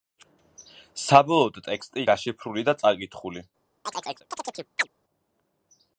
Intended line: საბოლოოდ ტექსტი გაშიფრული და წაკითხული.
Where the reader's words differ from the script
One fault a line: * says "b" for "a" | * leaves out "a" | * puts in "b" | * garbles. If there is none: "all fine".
all fine